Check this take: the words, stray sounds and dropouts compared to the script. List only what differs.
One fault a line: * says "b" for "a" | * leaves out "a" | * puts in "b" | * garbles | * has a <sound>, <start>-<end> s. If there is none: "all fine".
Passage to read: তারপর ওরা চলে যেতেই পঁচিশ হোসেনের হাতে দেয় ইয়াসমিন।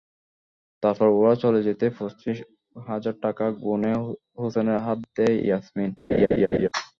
* puts in "হাজার টাকা গুনে"
* has a laugh, 6.1-6.7 s